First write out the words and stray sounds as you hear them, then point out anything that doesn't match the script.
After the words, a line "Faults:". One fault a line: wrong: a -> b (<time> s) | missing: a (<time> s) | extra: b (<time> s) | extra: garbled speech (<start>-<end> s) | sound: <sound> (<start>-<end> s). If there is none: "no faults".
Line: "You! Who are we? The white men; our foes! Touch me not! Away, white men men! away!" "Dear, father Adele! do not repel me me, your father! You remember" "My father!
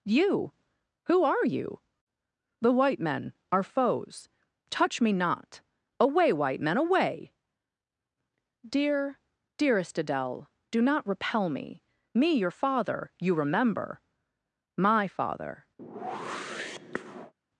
"You! Who are you? The white men; our foes! Touch me not! Away, white men! away!" "Dear, dearest Adele! do not repel me me, your father! You remember" "My father!
Faults:
wrong: we -> you (1.4 s)
missing: men (6.8 s)
wrong: father -> dearest (9.6 s)
sound: whoosh (15.8-17.3 s)